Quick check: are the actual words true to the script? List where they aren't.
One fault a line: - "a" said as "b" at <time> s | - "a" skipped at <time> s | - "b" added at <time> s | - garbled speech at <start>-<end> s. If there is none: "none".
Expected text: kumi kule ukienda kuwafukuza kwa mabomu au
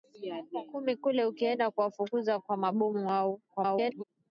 - garbled speech at 3.5-4.0 s